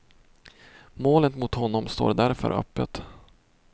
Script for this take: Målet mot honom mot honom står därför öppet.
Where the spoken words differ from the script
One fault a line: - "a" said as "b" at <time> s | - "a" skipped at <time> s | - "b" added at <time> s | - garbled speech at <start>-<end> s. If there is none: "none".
- "mot honom" skipped at 1.9 s